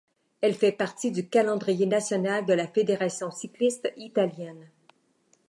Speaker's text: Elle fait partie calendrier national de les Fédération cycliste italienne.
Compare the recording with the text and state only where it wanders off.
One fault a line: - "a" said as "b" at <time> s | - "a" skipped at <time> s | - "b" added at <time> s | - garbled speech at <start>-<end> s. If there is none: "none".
- "du" added at 1.1 s
- "les" said as "la" at 2.5 s